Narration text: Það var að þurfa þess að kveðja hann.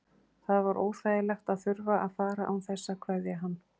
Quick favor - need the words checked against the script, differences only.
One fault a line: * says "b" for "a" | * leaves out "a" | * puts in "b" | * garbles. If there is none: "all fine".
* puts in "óþægilegt"
* puts in "að fara án"